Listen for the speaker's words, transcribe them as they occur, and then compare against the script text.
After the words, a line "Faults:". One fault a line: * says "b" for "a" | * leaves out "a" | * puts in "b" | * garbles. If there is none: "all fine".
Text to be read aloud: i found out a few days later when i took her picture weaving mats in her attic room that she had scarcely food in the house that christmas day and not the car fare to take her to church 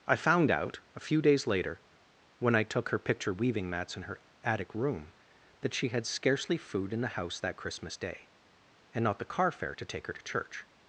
i found out a few days later when i took her picture weaving mats in her attic room that she had scarcely food in the house that christmas day and not the car fare to take her to church
Faults:
all fine